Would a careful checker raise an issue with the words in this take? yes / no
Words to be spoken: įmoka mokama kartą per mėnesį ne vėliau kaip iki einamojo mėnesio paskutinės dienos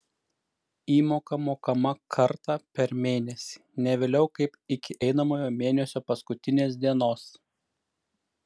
no